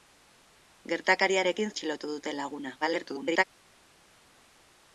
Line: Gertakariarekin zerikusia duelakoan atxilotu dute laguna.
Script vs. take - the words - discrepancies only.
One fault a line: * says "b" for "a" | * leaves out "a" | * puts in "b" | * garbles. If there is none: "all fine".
* leaves out "zerikusia duelakoan"
* garbles